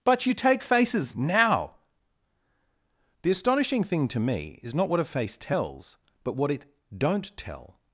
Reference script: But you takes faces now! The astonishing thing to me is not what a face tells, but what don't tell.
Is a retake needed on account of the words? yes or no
yes